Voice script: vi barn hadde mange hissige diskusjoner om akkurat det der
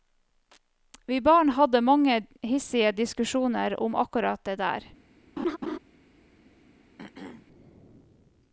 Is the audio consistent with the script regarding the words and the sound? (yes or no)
no